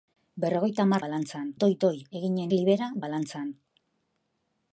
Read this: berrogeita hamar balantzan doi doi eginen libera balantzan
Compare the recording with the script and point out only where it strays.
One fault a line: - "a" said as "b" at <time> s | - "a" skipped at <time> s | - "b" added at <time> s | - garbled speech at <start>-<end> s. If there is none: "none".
none